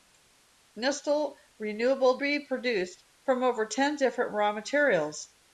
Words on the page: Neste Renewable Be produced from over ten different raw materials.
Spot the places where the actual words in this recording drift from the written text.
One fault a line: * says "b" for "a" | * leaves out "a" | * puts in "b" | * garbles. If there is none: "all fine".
all fine